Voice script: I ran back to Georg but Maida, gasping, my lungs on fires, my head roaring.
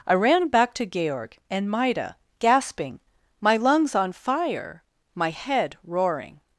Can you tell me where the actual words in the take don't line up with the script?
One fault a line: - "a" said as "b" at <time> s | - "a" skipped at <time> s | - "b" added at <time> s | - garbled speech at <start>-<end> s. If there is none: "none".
- "but" said as "and" at 1.5 s
- "fires" said as "fire" at 4.1 s